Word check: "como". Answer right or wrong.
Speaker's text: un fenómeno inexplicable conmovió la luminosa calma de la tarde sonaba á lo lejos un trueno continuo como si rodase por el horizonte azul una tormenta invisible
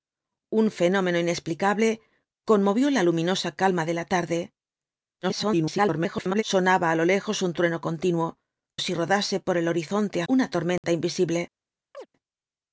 wrong